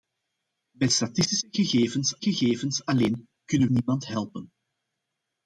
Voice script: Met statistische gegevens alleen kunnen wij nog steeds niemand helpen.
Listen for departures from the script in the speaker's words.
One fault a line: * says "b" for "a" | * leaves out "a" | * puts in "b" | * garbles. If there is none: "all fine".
* puts in "gegevens"
* leaves out "wij nog steeds"